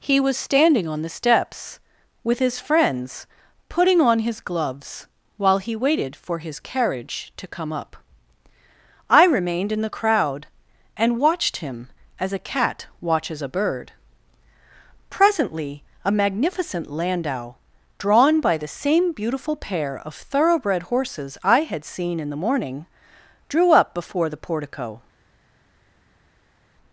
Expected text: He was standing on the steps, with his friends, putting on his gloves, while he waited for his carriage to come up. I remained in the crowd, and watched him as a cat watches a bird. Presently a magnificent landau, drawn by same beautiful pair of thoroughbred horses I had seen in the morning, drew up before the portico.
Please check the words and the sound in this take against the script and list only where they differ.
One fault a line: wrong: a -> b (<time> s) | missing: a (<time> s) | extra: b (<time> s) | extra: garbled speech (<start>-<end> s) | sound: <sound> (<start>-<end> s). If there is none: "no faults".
extra: the (18.6 s)